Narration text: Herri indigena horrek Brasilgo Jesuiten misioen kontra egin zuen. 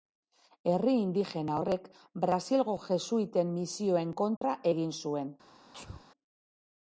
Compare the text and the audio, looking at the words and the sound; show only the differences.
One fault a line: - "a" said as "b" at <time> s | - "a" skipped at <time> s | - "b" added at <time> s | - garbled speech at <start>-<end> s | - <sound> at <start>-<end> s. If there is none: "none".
- dropout at 4.4-4.4 s
- sneeze at 5.7-6.1 s